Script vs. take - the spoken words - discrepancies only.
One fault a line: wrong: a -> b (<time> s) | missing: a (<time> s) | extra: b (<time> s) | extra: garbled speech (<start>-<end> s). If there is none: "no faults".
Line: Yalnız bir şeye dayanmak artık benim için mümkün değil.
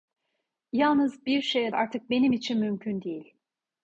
missing: dayanmak (1.8 s)